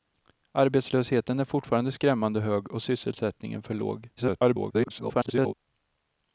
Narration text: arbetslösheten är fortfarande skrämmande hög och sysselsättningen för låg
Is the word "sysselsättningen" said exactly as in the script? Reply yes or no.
yes